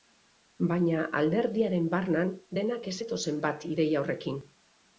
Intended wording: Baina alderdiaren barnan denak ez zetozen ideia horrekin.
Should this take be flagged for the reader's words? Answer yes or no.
yes